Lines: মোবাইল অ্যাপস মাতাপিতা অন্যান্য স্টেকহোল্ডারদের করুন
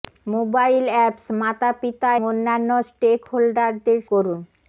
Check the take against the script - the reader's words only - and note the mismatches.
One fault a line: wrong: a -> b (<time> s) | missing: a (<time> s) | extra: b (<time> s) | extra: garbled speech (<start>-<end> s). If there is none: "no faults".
no faults